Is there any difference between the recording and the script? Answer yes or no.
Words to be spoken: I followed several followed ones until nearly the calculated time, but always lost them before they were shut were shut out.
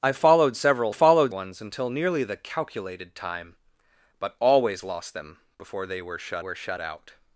no